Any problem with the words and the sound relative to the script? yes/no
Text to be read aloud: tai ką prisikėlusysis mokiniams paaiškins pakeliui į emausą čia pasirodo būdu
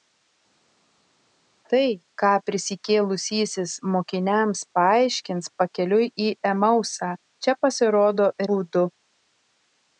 no